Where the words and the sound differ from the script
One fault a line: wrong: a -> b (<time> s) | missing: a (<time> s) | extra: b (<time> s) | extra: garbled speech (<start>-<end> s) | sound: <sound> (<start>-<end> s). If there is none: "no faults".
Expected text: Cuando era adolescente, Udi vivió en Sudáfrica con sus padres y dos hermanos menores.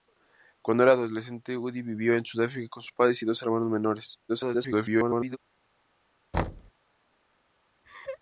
extra: garbled speech (4.3-5.4 s)
sound: thud (6.3-6.7 s)
sound: laugh (7.8-8.2 s)